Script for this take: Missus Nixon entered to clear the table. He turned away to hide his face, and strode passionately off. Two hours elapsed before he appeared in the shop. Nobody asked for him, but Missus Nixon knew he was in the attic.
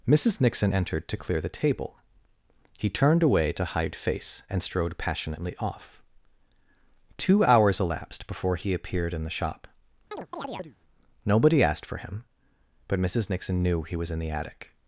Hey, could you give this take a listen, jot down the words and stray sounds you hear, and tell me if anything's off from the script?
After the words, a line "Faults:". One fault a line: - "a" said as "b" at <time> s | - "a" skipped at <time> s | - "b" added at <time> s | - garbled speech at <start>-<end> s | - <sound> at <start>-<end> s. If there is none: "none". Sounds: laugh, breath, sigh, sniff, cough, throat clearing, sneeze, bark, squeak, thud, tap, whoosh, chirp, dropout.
Missus Nixon entered to clear the table. He turned away to hide face, and strode passionately off. Two hours elapsed before he appeared in the shop. Nobody asked for him, but Missus Nixon knew he was in the attic.
Faults:
- "his" skipped at 4.0 s
- chirp at 10.1-10.8 s